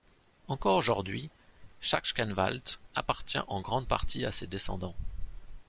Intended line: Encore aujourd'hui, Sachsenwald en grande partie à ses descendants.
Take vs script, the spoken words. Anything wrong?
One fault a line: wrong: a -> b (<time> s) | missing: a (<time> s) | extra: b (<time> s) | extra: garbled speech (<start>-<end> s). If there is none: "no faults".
extra: appartient (3.0 s)